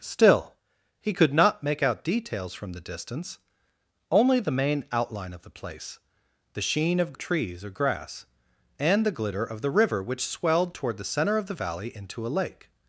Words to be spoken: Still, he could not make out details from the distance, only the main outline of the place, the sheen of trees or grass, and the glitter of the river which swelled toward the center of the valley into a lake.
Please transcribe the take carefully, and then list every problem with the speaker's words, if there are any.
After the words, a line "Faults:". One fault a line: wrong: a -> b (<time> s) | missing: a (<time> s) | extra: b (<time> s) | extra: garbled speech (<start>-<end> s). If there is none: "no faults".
Still, he could not make out details from the distance, only the main outline of the place, the sheen of trees or grass, and the glitter of the river which swelled toward the center of the valley into a lake.
Faults:
no faults